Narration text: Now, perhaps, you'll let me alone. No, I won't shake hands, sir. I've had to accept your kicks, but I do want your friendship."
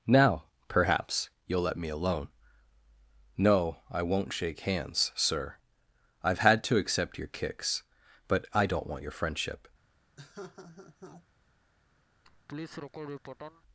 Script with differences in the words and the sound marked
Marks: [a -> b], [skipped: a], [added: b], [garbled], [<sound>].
Now, perhaps, you'll let me alone. No, I won't shake hands, sir. I've had to accept your kicks, but I [do -> don't] want your friendship." [laugh] [laugh]